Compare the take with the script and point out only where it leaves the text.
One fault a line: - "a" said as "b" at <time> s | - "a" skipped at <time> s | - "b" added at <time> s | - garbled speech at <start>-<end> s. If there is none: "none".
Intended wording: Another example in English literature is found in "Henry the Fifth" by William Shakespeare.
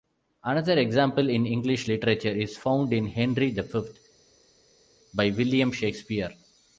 none